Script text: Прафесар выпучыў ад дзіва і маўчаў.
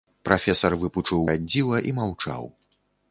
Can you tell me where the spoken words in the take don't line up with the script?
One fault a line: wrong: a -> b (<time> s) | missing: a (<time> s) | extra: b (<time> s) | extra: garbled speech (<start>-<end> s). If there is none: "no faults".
no faults